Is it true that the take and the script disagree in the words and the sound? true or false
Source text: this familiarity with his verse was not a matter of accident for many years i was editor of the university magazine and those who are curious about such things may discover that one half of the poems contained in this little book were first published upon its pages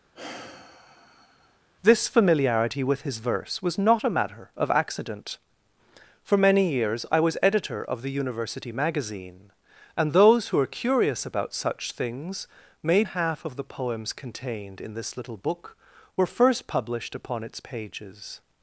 true